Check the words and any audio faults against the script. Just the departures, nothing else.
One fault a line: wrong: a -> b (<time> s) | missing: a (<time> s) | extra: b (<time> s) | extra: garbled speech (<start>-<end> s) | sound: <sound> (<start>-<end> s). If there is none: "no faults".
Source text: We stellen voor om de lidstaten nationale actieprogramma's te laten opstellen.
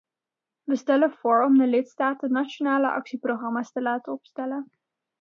no faults